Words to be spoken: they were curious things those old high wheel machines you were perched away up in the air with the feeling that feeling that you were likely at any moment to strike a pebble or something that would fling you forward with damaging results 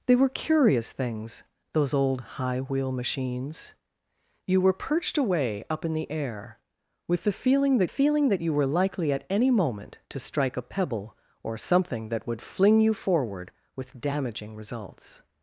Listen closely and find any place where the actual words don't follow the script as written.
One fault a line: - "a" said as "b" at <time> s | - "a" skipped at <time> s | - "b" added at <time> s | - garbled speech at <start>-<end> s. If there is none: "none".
none